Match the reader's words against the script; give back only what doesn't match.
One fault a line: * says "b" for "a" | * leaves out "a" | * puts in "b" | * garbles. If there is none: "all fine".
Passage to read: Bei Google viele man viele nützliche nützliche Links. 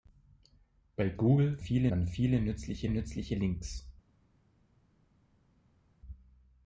all fine